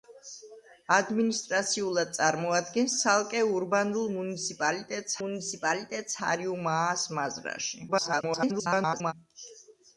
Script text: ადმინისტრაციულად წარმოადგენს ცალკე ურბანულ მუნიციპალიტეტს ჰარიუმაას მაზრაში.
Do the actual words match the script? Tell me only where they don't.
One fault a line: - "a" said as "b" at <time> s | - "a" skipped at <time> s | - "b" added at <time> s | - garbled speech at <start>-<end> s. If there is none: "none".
- "მუნიციპალიტეტს" added at 5.2 s
- garbled speech at 7.9-9.1 s